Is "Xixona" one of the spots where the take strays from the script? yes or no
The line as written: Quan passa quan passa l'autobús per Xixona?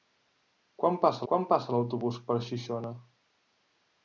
no